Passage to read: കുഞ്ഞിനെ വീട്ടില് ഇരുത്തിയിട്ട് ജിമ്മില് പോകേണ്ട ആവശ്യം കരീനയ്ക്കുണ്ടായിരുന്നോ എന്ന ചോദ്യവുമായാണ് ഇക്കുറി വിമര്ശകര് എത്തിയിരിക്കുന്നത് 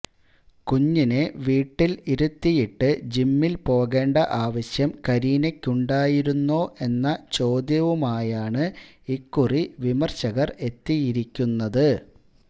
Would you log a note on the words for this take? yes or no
no